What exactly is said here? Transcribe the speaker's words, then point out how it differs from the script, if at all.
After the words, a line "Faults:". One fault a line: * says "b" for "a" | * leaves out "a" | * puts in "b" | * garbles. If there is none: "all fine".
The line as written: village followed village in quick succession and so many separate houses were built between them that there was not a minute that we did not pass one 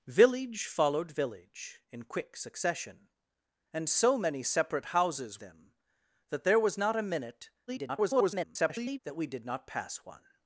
village followed village in quick succession and so many separate houses them that there was not a minute [garbled] that we did not pass one
Faults:
* leaves out "were built between"
* garbles